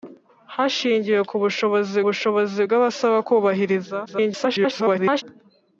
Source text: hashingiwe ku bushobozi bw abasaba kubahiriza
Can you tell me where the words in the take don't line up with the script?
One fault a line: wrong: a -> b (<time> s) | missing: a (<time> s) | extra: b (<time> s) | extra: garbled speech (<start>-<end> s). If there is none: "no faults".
extra: bushobozi (2.1 s)
extra: garbled speech (4.1-5.2 s)